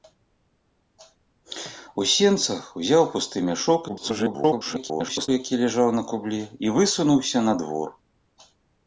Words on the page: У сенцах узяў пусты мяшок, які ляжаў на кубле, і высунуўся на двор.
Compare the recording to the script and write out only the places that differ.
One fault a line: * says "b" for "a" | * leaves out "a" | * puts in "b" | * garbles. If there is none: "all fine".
* garbles